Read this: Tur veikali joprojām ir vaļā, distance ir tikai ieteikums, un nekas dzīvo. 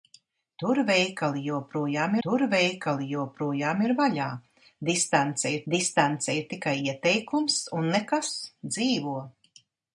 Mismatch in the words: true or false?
true